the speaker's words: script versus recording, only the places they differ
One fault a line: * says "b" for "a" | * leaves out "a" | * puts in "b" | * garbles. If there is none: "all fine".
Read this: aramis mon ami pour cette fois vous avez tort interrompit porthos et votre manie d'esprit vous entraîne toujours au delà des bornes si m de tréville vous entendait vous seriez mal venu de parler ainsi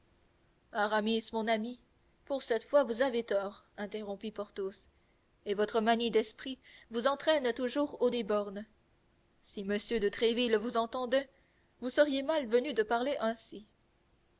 * leaves out "delà"